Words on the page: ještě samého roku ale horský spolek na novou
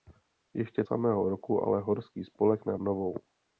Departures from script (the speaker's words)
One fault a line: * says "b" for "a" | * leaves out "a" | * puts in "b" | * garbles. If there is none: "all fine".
all fine